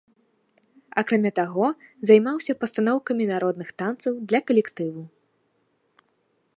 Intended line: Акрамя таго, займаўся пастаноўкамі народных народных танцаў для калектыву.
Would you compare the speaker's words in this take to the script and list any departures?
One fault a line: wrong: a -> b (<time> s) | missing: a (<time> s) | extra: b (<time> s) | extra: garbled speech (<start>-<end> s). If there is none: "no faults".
missing: народных (3.7 s)